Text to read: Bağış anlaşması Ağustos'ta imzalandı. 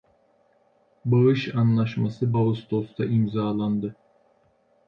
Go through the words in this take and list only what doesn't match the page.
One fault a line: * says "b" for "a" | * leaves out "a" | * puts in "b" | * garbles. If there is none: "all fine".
all fine